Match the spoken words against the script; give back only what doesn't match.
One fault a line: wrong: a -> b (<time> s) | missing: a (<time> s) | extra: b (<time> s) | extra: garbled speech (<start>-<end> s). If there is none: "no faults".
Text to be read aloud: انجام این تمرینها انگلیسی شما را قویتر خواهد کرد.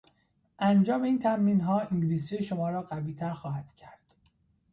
no faults